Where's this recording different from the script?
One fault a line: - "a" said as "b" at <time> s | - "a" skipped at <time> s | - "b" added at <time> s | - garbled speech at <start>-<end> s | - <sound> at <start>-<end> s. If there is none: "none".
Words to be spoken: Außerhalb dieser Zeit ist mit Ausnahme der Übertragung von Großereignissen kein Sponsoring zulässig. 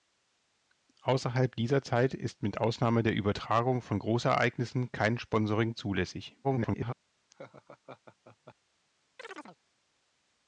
- garbled speech at 6.4-6.9 s
- laugh at 7.3-8.5 s
- chirp at 9.2-9.6 s